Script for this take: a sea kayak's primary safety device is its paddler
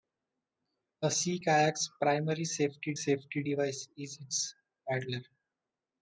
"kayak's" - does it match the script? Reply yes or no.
yes